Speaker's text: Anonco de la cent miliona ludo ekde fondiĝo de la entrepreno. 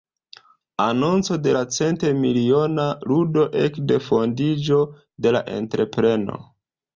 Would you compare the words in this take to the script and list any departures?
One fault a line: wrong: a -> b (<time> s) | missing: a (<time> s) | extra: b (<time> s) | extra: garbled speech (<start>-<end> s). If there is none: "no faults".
no faults